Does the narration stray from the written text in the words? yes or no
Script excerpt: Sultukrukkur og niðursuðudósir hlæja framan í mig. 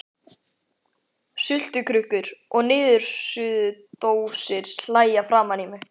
no